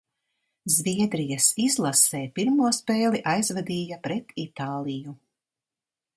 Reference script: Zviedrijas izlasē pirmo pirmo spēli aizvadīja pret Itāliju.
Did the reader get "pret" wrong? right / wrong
right